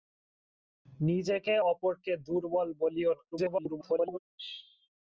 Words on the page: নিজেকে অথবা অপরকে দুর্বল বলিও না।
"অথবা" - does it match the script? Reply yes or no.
no